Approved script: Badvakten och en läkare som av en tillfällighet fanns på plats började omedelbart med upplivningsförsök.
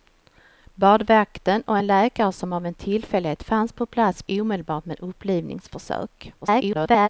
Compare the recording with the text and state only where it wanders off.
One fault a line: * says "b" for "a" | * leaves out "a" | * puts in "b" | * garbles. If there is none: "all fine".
* leaves out "började"
* garbles